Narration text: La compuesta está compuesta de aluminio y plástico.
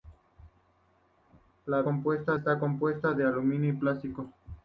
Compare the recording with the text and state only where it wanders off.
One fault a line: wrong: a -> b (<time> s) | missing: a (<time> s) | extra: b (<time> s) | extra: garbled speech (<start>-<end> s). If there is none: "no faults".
no faults